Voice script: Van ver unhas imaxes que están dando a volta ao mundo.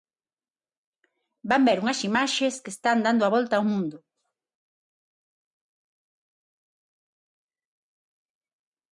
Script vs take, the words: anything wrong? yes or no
no